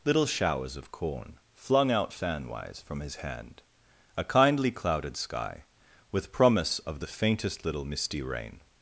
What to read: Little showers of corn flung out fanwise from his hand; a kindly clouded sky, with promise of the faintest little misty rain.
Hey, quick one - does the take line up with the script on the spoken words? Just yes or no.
yes